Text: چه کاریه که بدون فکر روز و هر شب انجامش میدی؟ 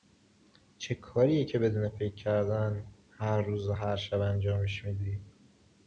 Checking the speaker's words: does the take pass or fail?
fail